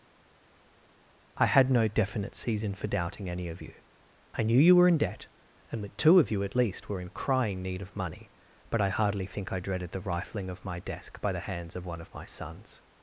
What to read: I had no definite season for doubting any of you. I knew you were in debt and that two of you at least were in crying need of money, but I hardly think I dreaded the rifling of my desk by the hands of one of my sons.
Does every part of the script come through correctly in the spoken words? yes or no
yes